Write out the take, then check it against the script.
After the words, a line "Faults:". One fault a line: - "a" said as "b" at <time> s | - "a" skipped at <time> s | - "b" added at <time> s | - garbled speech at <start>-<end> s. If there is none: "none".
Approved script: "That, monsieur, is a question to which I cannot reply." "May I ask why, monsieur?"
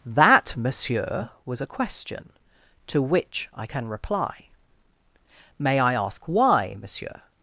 "That, monsieur, was a question to which I can reply." "May I ask why, monsieur?"
Faults:
- "is" said as "was" at 1.4 s
- "cannot" said as "can" at 3.6 s